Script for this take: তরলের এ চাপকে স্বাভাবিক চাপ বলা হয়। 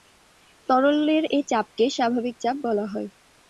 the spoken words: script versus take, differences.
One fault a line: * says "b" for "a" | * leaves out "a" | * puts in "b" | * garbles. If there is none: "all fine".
all fine